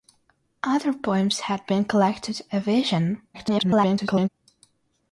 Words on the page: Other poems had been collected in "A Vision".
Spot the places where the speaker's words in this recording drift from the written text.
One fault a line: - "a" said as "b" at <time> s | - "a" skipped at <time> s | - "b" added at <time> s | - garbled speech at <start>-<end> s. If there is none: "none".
- "in" skipped at 2.4 s
- garbled speech at 3.3-4.3 s